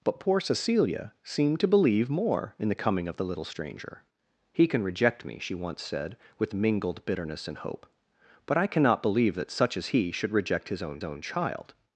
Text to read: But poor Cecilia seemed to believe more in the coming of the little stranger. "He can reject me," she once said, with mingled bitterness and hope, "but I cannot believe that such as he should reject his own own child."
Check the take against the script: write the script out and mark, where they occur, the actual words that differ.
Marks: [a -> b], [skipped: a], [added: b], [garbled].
But poor Cecilia seemed to believe more in the coming of the little stranger. "He can reject me," she once said, with mingled bitterness and hope, "but I cannot believe that such as he should reject his own own child."